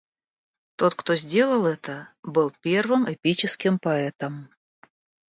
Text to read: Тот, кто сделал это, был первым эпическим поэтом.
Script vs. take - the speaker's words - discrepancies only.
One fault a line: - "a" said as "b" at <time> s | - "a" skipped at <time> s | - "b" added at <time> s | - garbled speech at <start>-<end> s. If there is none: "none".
none